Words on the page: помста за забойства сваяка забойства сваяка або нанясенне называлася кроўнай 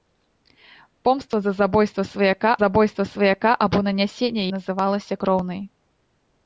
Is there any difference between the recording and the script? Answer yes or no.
no